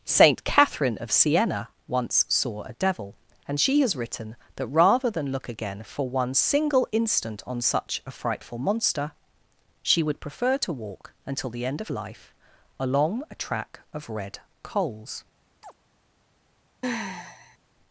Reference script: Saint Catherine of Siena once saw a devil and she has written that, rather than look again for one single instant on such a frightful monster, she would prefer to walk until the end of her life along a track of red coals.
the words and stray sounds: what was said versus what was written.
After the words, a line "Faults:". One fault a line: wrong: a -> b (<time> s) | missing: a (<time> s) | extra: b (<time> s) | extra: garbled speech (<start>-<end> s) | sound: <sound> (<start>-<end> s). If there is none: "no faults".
Saint Catherine of Siena once saw a devil and she has written that, rather than look again for one single instant on such a frightful monster, she would prefer to walk until the end of life along a track of red coals.
Faults:
missing: her (11.9 s)
sound: chirp (15.6-15.7 s)
sound: sigh (16.8-17.6 s)